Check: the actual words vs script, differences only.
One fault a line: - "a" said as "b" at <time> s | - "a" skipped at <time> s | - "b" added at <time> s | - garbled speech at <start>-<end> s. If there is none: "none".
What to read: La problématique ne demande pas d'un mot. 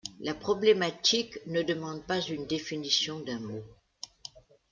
- "une définition" added at 2.2 s